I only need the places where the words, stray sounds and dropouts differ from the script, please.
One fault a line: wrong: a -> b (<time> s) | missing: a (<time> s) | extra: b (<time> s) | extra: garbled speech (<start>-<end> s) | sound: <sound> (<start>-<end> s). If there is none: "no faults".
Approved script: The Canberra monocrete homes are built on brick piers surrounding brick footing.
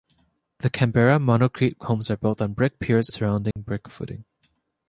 sound: dropout (3.5-3.6 s)